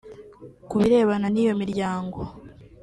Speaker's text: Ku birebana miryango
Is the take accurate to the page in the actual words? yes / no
no